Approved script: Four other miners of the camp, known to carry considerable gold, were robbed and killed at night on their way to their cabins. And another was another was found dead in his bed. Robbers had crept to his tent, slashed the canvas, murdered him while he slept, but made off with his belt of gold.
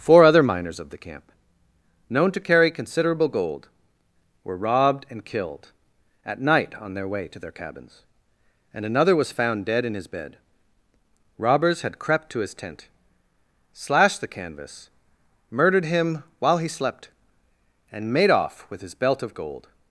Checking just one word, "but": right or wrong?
wrong